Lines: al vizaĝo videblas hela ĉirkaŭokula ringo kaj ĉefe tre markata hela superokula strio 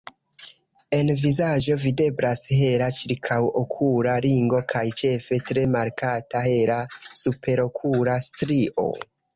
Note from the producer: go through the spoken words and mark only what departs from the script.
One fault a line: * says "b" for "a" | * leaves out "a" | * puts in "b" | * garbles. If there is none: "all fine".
* says "en" for "al"